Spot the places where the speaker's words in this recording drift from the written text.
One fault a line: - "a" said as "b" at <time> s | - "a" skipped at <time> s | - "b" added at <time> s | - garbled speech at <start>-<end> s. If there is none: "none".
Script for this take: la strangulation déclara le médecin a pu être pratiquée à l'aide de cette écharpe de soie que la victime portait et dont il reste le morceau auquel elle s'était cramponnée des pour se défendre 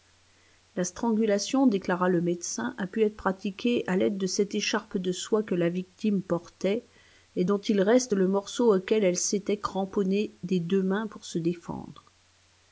- "deux mains" added at 10.6 s